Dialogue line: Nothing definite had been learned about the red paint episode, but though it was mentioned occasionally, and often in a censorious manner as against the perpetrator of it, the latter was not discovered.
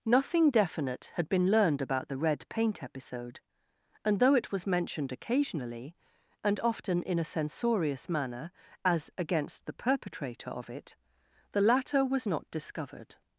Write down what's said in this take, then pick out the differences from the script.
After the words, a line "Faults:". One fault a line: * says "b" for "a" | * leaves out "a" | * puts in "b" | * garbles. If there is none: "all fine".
Nothing definite had been learned about the red paint episode, and though it was mentioned occasionally, and often in a censorious manner as against the perpetrator of it, the latter was not discovered.
Faults:
* says "and" for "but"